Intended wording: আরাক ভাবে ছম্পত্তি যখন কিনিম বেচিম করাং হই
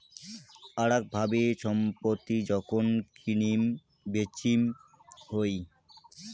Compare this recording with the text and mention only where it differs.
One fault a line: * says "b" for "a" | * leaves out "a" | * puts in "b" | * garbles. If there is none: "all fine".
* leaves out "করাং"